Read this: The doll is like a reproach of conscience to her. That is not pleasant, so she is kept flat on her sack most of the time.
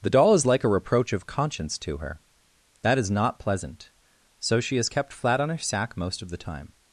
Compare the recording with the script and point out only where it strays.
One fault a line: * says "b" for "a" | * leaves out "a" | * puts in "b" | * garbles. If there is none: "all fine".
all fine